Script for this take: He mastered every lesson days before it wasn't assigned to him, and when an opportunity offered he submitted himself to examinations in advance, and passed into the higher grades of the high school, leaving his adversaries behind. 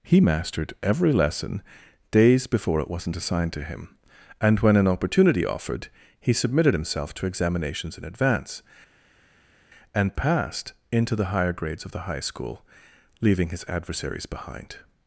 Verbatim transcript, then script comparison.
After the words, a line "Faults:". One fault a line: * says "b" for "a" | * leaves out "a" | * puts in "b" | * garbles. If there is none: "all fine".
He mastered every lesson days before it wasn't assigned to him, and when an opportunity offered he submitted himself to examinations in advance, and passed into the higher grades of the high school, leaving his adversaries behind.
Faults:
all fine